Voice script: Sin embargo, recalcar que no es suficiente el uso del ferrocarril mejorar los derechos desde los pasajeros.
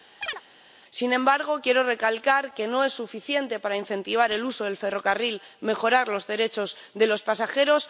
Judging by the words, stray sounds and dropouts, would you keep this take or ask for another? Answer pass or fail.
fail